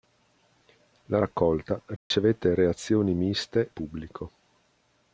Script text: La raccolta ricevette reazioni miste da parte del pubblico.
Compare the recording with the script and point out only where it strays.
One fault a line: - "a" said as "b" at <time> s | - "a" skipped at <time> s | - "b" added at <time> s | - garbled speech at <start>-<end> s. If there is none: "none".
- "da parte del" skipped at 3.7 s